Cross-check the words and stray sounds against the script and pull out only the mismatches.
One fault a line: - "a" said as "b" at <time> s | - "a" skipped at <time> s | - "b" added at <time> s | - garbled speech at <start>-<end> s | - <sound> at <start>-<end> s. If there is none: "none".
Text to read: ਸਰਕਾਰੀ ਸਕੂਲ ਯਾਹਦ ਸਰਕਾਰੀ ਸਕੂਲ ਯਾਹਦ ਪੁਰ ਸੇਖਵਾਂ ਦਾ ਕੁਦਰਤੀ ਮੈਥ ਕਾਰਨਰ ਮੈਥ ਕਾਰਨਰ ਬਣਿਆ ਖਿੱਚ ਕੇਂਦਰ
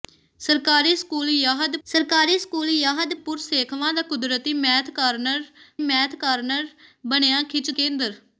none